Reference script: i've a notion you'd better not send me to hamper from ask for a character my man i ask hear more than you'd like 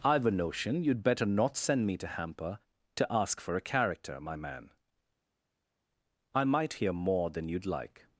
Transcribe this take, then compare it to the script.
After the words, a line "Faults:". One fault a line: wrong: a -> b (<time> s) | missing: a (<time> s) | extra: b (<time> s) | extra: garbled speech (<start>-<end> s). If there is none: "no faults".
i've a notion you'd better not send me to hamper to ask for a character my man i might hear more than you'd like
Faults:
wrong: from -> to (3.0 s)
wrong: ask -> might (6.4 s)